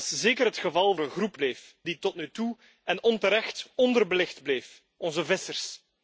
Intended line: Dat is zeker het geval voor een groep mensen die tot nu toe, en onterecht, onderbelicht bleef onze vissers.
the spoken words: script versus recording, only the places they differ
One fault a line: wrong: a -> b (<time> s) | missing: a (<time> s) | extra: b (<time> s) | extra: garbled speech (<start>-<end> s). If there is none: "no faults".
missing: voor (0.9 s)
wrong: mensen -> bleef (1.4 s)